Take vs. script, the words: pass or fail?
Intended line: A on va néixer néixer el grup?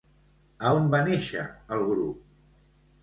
fail